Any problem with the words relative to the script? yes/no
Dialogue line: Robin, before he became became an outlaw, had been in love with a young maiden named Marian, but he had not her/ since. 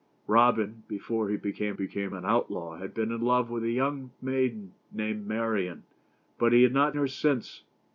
no